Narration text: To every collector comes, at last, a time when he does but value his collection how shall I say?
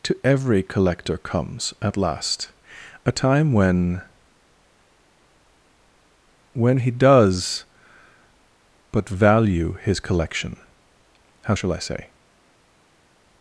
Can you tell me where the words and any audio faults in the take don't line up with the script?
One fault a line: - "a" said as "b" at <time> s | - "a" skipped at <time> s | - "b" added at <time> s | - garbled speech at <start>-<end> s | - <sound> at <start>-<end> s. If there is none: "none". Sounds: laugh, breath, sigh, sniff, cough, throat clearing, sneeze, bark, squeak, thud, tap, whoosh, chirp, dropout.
- "when" added at 6.5 s